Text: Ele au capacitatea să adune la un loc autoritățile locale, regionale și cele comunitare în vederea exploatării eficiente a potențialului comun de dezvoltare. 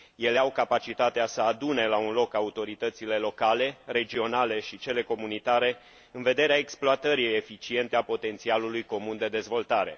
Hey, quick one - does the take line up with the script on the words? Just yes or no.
yes